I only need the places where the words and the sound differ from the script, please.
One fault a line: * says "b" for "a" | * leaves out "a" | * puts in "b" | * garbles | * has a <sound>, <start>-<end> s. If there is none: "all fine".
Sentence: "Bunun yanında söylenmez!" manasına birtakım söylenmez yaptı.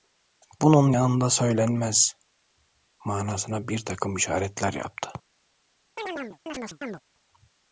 * says "işaretler" for "söylenmez"
* has a chirp, 6.0-7.0 s